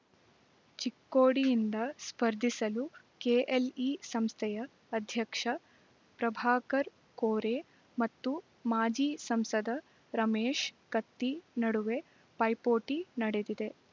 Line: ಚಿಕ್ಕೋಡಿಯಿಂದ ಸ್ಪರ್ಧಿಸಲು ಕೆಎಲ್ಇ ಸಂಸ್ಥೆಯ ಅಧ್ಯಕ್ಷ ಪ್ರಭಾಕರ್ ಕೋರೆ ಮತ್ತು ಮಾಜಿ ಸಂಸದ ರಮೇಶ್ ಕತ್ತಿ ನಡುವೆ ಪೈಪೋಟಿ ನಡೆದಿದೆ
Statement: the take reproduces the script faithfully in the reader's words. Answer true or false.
true